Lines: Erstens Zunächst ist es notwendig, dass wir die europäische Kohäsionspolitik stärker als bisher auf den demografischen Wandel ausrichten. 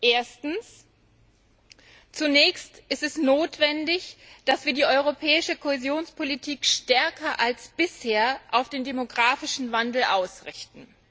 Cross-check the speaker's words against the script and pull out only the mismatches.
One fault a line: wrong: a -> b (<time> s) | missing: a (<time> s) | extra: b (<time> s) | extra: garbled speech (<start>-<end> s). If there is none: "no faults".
no faults